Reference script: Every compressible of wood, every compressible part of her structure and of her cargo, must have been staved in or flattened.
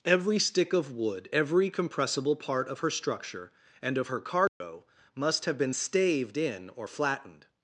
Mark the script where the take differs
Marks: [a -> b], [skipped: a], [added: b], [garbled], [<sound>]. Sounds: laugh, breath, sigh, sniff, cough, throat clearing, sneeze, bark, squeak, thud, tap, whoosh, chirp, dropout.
Every [compressible -> stick] of wood, every compressible part of her structure and of her cargo, [dropout] must have been staved in or flattened.